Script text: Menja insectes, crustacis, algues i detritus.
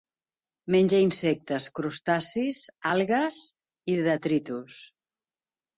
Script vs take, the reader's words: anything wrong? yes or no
no